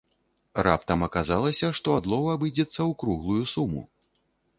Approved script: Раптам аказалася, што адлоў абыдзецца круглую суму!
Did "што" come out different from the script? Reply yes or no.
no